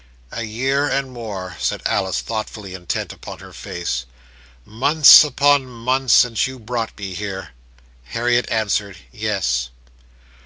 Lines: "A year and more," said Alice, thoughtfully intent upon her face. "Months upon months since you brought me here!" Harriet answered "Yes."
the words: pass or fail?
pass